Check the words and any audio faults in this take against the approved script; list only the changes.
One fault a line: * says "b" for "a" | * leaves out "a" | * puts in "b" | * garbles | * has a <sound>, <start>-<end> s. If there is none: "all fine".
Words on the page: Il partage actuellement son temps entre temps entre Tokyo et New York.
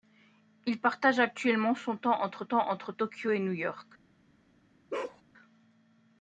* has a bark, 4.9-5.2 s